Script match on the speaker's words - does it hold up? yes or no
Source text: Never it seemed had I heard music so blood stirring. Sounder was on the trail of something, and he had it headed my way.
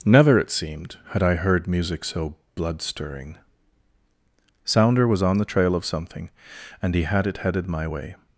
yes